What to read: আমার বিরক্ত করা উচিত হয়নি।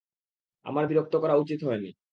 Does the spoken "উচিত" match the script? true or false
true